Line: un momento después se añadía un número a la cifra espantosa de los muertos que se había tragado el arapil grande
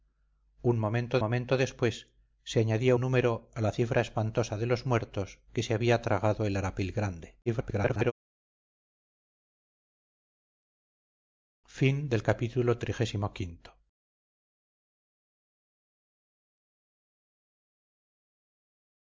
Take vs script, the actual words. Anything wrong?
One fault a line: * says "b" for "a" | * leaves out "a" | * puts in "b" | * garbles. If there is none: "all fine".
* puts in "momento"
* leaves out "un"
* garbles